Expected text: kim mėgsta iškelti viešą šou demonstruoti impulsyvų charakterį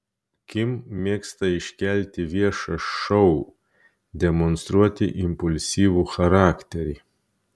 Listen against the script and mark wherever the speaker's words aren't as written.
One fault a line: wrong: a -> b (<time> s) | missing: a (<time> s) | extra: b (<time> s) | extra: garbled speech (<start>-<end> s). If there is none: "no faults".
no faults